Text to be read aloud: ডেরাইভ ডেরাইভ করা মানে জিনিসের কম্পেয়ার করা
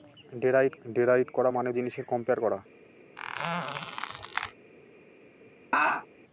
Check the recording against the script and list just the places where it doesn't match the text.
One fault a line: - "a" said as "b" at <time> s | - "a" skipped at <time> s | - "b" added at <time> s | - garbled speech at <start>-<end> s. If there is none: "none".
none